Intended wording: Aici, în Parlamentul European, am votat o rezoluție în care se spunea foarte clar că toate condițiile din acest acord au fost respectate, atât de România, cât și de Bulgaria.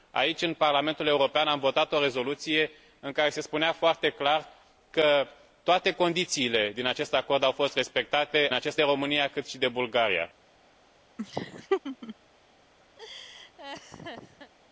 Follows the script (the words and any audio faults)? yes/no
no